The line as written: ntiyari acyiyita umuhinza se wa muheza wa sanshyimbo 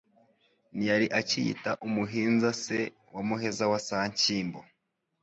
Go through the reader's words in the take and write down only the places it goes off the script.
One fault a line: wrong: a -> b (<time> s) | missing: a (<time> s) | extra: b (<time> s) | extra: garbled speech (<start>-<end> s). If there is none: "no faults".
no faults